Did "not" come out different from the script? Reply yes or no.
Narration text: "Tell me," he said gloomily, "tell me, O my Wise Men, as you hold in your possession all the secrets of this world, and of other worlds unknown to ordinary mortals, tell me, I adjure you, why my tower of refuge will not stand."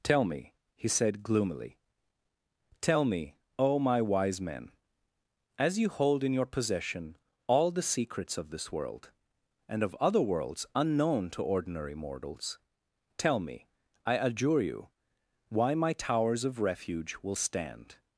yes